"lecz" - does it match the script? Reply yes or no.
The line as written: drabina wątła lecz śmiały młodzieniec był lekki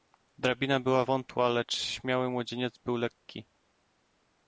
yes